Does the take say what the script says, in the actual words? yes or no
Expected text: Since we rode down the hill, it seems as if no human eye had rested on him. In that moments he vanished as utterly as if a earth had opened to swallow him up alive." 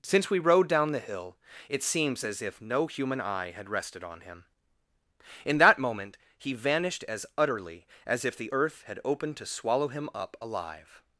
no